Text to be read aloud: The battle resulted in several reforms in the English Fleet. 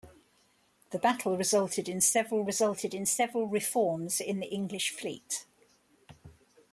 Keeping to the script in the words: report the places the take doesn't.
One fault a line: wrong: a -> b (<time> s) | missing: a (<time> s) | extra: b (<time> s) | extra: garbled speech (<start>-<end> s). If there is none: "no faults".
extra: resulted in several (2.5 s)